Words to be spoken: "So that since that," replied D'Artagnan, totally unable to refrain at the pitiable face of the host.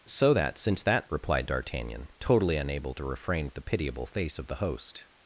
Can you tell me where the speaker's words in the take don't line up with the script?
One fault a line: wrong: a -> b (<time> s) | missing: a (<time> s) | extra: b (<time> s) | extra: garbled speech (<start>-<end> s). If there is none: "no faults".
no faults